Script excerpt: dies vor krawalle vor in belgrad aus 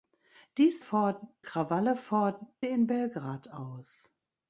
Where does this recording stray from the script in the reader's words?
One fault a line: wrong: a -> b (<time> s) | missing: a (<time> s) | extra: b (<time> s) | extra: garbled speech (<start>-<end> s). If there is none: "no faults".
no faults